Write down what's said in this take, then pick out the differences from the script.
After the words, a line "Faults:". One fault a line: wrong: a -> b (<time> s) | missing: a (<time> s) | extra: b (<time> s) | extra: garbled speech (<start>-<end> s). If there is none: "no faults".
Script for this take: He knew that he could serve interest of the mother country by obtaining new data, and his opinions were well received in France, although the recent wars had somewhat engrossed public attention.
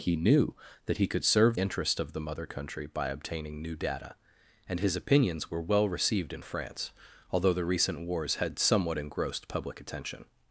He knew that he could serve interest of the mother country by obtaining new data, and his opinions were well received in France, although the recent wars had somewhat engrossed public attention.
Faults:
no faults